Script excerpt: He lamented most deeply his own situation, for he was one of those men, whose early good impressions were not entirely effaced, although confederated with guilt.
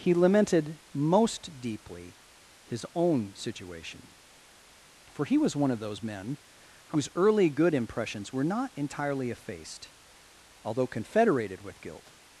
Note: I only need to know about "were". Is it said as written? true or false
true